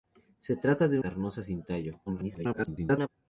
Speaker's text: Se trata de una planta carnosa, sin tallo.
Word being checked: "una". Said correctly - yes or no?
no